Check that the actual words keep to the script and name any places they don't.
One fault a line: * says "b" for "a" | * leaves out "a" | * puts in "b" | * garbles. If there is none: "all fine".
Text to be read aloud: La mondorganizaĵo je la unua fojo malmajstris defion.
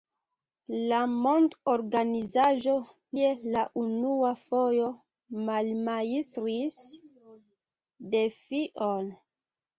all fine